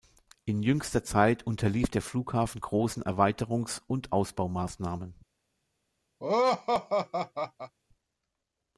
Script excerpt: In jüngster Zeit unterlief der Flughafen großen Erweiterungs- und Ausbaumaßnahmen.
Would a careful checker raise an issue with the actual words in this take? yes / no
no